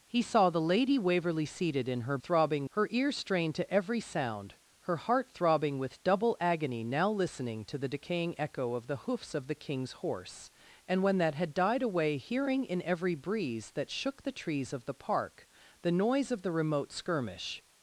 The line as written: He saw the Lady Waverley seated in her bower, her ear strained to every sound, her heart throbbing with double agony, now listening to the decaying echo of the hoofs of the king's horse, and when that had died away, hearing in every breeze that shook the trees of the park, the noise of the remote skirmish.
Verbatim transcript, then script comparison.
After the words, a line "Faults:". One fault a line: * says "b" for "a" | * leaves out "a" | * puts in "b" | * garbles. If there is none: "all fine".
He saw the Lady Waverley seated in her throbbing, her ear strained to every sound, her heart throbbing with double agony, now listening to the decaying echo of the hoofs of the king's horse, and when that had died away, hearing in every breeze that shook the trees of the park, the noise of the remote skirmish.
Faults:
* says "throbbing" for "bower"